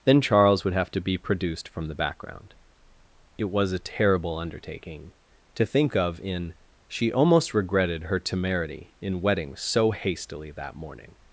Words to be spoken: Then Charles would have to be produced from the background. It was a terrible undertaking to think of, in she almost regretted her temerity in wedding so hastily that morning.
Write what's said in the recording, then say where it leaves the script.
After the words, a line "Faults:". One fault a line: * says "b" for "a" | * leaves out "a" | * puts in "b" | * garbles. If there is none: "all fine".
Then Charles would have to be produced from the background. It was a terrible undertaking to think of, in she almost regretted her temerity in wedding so hastily that morning.
Faults:
all fine